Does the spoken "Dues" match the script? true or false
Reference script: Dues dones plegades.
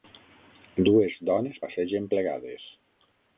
true